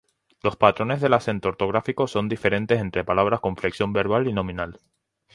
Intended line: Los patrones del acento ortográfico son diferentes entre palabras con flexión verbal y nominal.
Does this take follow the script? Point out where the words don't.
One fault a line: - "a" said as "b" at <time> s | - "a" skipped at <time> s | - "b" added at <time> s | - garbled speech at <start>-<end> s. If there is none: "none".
none